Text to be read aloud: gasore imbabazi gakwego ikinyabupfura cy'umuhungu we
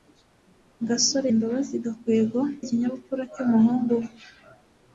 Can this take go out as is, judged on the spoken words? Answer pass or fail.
pass